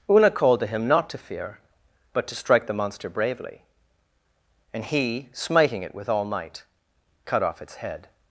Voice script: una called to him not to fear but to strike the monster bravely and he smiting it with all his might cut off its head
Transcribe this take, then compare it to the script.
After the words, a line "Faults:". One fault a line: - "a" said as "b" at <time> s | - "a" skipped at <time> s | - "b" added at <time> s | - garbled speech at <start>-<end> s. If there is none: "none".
una called to him not to fear but to strike the monster bravely and he smiting it with all might cut off its head
Faults:
- "his" skipped at 6.2 s